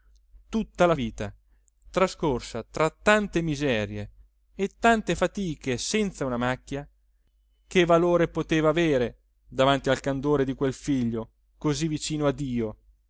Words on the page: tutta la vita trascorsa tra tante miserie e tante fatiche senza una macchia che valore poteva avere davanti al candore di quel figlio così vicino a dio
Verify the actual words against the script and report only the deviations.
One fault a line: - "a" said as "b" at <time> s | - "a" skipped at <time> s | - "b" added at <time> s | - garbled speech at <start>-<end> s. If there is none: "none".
none